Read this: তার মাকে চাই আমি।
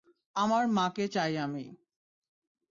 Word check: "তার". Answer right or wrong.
wrong